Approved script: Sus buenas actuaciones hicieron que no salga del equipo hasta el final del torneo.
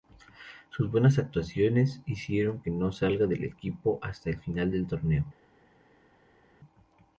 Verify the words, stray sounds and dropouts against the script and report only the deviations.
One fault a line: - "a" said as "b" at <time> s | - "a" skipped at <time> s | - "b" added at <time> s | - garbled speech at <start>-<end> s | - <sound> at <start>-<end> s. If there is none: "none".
none